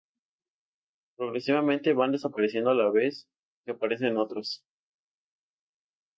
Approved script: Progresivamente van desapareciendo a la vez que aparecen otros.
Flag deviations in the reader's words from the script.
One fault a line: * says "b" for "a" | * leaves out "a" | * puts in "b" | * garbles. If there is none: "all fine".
all fine